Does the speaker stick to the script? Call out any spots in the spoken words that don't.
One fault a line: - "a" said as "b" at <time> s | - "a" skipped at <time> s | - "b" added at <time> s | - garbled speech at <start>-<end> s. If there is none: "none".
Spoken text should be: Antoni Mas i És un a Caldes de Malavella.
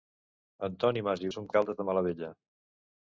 none